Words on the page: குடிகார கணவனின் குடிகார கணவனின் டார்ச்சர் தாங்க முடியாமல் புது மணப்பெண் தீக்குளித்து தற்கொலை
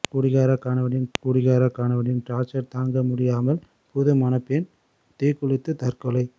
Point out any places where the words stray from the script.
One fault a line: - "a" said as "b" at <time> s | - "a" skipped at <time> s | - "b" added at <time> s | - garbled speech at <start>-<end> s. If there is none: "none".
none